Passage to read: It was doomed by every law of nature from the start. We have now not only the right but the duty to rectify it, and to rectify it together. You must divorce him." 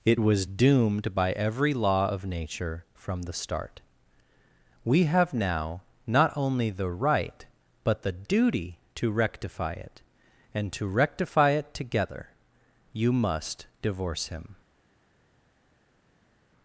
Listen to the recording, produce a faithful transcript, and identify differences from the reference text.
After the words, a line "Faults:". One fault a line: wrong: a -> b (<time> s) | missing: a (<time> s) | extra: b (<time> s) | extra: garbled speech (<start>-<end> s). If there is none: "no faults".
It was doomed by every law of nature from the start. We have now not only the right but the duty to rectify it, and to rectify it together. You must divorce him."
Faults:
no faults